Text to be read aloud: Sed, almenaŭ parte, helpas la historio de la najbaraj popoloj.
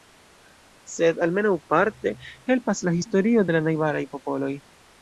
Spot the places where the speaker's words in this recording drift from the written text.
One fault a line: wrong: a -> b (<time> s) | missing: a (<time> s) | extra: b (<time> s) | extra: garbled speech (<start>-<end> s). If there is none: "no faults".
no faults